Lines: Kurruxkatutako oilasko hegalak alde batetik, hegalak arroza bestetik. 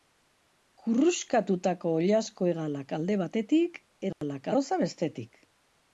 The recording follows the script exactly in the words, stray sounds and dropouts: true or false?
false